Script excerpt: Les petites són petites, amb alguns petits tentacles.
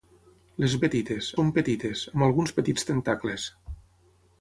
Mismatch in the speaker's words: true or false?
false